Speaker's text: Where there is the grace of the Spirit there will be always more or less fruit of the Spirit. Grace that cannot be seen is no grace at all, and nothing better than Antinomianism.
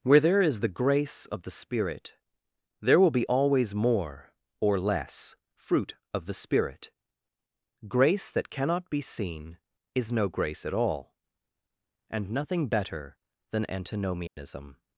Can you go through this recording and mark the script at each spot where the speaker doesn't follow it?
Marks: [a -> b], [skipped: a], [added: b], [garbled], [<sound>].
Where there is the grace of the Spirit there will be always more or less fruit of the Spirit. Grace that cannot be seen is no grace at all, and nothing better than Antinomianism. [dropout]